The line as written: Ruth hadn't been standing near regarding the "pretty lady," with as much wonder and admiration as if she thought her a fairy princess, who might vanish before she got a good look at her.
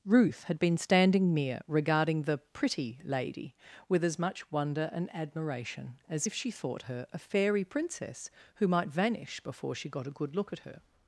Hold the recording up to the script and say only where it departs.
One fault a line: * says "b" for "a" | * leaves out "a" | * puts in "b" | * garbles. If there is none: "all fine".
* says "had" for "hadn't"